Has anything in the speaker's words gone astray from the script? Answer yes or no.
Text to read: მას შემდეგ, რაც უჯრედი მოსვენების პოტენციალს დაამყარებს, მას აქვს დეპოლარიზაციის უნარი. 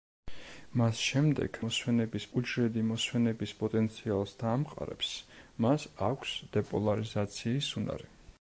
yes